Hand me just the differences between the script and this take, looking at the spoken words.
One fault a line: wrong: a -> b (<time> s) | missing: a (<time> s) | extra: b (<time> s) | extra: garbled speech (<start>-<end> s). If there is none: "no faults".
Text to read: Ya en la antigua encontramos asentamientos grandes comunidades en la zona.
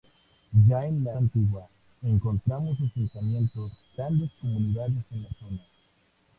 no faults